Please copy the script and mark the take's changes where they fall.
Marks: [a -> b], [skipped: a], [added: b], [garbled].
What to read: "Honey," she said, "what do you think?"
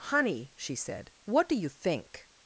"Honey," she said, "what do you think?"